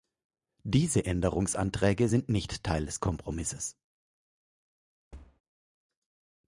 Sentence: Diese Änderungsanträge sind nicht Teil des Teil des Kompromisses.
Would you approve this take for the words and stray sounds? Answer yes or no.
no